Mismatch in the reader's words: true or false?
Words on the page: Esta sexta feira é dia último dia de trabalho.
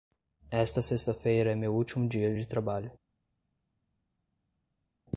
true